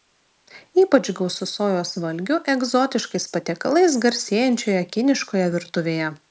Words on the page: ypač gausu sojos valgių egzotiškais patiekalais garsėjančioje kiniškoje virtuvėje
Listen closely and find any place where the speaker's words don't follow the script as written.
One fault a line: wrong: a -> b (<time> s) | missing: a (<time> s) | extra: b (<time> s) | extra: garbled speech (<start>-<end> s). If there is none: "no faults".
no faults